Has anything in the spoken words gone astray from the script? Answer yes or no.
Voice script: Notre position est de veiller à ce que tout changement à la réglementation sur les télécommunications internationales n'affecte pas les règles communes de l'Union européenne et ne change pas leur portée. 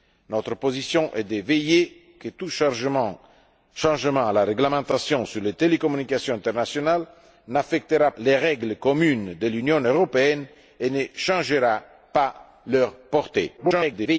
yes